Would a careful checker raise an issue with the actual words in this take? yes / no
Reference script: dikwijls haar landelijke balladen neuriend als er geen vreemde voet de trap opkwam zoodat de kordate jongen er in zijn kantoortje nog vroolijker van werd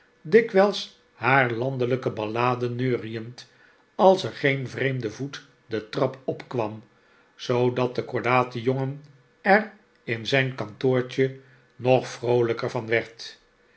no